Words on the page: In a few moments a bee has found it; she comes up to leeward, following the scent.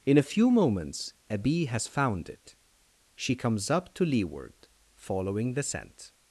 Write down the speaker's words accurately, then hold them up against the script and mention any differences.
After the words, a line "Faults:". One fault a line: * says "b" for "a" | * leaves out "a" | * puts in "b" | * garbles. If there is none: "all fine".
In a few moments a bee has found it; she comes up to leeward, following the scent.
Faults:
all fine